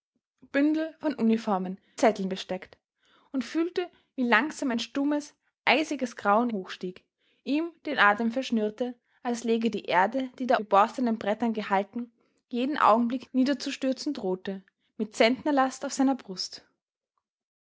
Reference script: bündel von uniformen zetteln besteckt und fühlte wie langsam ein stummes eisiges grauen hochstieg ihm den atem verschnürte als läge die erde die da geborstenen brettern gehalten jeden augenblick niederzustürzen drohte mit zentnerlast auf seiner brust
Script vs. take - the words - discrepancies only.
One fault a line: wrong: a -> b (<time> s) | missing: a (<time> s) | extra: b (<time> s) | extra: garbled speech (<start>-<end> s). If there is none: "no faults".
no faults